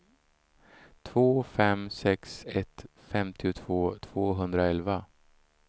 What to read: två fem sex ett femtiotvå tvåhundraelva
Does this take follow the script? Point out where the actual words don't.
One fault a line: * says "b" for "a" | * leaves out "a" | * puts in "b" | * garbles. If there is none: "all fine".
all fine